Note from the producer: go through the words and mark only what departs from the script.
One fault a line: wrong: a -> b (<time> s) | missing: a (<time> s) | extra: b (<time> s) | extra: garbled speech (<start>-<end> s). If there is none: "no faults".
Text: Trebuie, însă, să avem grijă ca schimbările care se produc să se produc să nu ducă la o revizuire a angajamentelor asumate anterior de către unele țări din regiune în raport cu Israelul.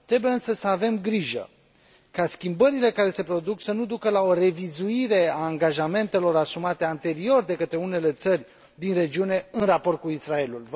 missing: se produc să (3.7 s)